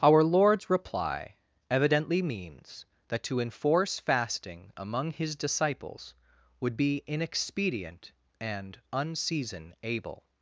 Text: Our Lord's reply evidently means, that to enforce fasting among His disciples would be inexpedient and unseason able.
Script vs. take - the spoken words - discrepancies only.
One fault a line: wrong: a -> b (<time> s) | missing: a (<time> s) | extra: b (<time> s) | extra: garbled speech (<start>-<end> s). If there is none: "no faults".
no faults